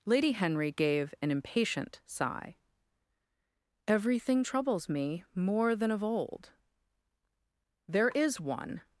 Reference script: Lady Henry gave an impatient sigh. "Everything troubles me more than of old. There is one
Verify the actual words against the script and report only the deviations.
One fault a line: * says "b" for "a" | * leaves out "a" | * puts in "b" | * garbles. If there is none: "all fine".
all fine